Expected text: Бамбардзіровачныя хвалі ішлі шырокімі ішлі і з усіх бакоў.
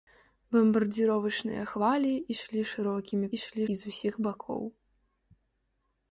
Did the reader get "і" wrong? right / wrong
right